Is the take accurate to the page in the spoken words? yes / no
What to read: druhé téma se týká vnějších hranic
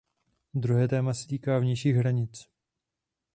yes